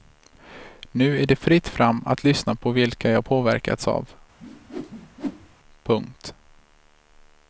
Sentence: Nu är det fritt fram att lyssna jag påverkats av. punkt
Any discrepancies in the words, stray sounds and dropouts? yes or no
yes